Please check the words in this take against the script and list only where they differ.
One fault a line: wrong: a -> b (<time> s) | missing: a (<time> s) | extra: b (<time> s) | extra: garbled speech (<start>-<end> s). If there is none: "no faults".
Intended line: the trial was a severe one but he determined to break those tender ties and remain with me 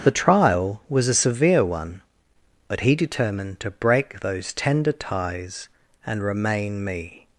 missing: with (6.8 s)